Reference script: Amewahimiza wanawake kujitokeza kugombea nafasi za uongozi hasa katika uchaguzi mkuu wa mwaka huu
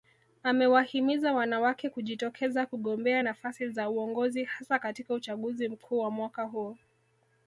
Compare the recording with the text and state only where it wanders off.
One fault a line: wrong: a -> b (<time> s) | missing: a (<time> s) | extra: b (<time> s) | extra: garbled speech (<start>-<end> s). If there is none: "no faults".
no faults